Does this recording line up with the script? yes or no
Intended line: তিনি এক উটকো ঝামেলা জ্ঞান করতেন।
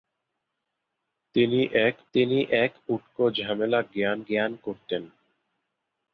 no